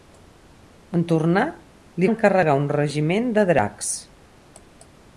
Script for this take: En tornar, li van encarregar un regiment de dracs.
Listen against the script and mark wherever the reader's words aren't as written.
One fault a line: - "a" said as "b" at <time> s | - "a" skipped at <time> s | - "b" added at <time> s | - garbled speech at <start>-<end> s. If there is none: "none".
- "van" skipped at 2.1 s